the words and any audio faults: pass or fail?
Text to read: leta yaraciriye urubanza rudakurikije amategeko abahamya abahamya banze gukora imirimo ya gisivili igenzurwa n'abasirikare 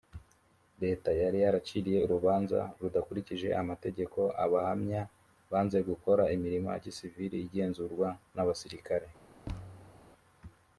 fail